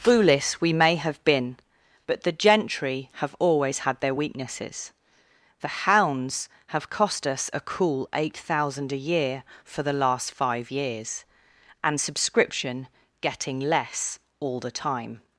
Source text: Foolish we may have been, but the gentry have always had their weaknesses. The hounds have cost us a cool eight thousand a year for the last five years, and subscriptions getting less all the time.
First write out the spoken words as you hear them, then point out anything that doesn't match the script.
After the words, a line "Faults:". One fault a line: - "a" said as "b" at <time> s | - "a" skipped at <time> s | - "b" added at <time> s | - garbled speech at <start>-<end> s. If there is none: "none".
Foolish we may have been, but the gentry have always had their weaknesses. The hounds have cost us a cool eight thousand a year for the last five years, and subscription getting less all the time.
Faults:
- "subscriptions" said as "subscription" at 12.0 s